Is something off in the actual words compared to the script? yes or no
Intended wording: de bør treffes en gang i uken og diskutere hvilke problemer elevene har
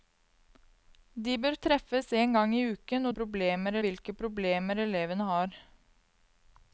yes